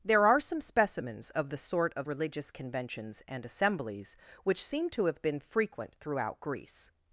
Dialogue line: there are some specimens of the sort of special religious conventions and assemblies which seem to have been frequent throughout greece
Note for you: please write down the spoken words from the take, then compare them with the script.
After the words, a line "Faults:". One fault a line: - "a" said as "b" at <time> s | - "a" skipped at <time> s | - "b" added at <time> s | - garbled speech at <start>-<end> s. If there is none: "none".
there are some specimens of the sort of religious conventions and assemblies which seem to have been frequent throughout greece
Faults:
- "special" skipped at 2.1 s